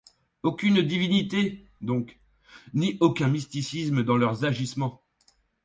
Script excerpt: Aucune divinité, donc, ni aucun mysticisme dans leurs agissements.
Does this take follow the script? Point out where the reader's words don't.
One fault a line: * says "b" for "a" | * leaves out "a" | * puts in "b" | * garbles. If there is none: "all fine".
all fine